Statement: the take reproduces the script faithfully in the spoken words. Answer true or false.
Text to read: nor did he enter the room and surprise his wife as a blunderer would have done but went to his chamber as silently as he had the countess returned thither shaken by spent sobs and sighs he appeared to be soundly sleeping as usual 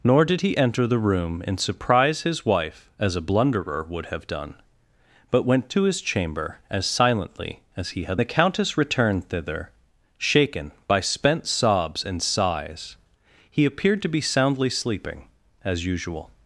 true